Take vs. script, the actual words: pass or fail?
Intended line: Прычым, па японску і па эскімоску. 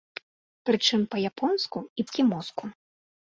fail